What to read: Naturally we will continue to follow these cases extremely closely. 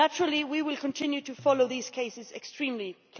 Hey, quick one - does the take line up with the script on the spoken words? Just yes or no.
yes